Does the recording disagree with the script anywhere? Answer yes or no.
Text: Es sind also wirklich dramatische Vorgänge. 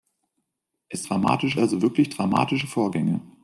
yes